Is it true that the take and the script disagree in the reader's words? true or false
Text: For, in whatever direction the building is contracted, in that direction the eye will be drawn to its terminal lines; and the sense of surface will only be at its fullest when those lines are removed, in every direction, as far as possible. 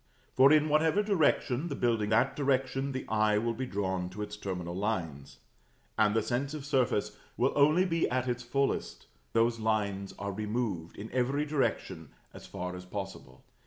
true